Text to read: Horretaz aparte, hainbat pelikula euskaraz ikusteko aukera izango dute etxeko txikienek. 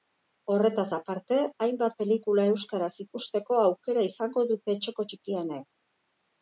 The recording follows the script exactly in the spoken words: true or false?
true